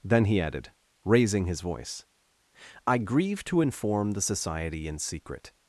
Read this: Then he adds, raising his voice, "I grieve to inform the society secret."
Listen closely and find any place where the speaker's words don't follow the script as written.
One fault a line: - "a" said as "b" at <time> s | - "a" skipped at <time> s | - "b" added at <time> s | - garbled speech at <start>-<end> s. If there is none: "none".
- "adds" said as "added" at 0.4 s
- "in" added at 4.9 s